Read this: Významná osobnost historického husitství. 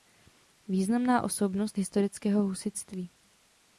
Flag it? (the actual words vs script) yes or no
no